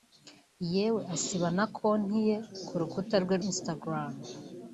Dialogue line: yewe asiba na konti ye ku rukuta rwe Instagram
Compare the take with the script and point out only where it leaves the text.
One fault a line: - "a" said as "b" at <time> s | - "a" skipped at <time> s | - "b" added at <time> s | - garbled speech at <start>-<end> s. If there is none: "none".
none